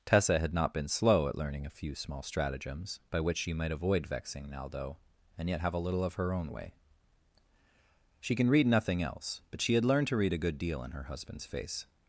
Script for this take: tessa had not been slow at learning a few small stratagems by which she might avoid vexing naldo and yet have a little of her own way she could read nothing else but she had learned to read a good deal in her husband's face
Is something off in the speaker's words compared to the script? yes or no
yes